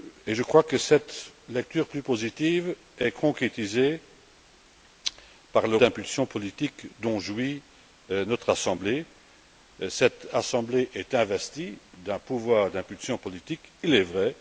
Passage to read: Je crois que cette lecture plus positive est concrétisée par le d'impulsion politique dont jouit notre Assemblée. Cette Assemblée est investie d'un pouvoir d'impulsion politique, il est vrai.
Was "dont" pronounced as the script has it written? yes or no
yes